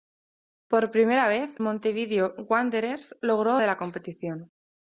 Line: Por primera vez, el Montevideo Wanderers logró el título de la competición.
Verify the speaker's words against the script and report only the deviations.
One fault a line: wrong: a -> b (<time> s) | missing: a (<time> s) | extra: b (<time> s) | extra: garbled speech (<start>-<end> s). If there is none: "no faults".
missing: el (1.5 s)
missing: el título (3.6 s)